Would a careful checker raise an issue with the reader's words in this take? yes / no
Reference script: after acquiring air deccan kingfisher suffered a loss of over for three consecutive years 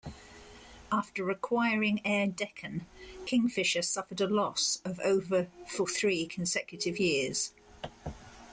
no